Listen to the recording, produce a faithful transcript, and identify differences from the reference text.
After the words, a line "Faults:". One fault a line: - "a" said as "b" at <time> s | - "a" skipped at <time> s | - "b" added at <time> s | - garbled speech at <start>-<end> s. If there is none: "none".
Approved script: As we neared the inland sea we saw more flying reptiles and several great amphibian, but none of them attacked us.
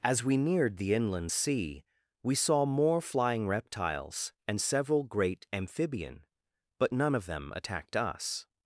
As we neared the inland sea we saw more flying reptiles and several great amphibian, but none of them attacked us.
Faults:
none